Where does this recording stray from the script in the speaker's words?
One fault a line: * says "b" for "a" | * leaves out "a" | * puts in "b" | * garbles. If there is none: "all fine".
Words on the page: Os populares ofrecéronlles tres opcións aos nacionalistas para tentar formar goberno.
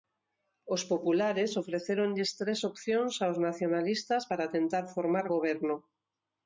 all fine